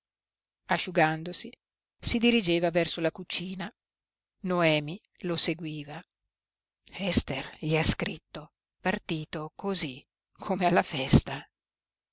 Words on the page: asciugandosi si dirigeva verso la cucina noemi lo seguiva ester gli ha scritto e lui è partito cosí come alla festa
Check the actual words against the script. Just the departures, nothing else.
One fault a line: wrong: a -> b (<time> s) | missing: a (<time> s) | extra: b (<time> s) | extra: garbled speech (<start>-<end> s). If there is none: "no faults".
missing: e lui è (8.5 s)